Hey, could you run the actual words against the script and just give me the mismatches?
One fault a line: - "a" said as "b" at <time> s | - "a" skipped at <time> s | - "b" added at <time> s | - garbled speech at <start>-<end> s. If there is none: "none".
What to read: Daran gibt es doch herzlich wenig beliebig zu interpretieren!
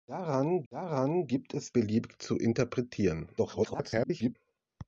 - "daran" added at 0.7 s
- "doch herzlich wenig" skipped at 1.7 s
- garbled speech at 3.4-4.4 s